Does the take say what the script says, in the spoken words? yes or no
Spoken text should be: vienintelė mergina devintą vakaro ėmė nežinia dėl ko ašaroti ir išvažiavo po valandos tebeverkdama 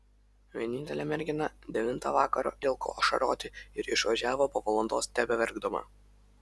no